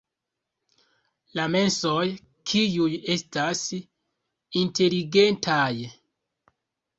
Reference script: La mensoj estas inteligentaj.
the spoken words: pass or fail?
fail